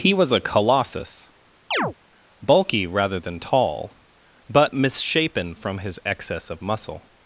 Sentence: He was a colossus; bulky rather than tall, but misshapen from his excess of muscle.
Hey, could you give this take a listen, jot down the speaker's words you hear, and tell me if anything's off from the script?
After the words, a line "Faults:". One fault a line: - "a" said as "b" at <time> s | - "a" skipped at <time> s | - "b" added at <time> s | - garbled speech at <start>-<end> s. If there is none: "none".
He was a colossus; bulky rather than tall, but misshapen from his excess of muscle.
Faults:
none